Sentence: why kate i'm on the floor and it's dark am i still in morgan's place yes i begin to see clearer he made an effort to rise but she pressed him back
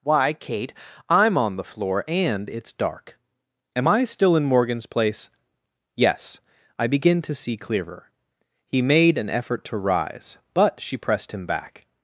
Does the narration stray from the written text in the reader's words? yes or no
no